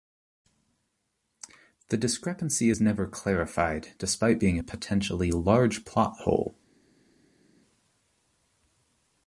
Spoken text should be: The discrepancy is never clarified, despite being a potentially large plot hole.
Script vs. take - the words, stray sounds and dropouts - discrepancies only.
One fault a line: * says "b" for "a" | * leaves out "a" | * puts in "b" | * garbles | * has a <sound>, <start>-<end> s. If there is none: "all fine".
all fine